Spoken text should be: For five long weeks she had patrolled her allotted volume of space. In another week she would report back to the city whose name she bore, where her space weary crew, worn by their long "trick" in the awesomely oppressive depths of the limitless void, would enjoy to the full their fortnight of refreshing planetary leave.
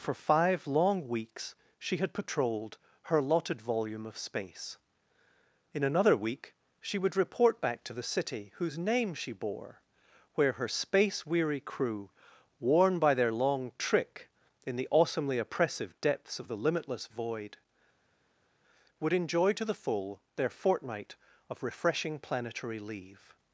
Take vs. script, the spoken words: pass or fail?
pass